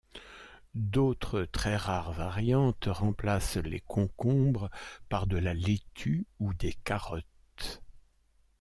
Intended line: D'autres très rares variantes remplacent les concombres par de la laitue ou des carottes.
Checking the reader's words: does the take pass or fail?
pass